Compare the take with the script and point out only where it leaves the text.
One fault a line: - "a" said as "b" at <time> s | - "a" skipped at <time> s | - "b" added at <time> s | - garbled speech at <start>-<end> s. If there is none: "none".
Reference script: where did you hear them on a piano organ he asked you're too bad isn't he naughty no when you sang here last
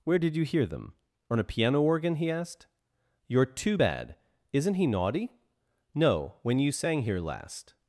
none